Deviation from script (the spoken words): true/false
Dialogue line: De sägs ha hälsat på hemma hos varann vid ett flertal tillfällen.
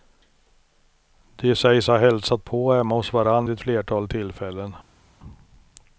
true